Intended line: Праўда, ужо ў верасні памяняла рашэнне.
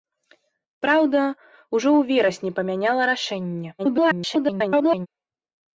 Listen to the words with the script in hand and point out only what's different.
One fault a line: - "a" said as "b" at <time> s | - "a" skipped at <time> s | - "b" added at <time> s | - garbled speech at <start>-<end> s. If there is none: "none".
- garbled speech at 3.8-5.1 s